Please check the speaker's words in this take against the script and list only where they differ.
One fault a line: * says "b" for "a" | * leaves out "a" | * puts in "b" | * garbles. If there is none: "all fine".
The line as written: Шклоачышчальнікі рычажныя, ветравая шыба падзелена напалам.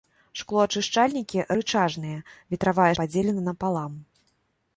* leaves out "шыба"